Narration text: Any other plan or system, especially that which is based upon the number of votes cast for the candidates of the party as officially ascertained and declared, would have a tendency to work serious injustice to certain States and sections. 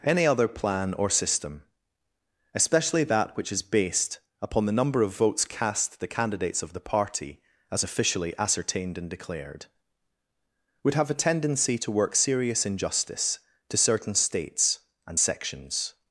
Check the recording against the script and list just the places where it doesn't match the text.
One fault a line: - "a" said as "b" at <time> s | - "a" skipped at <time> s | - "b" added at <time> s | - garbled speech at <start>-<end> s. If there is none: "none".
- "for" skipped at 6.0 s